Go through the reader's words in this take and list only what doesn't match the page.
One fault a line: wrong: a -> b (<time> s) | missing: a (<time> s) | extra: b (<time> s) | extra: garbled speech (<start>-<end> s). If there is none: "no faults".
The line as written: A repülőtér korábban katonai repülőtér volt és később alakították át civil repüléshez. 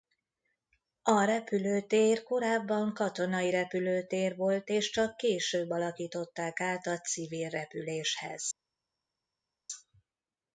extra: csak (4.9 s)
extra: a (6.9 s)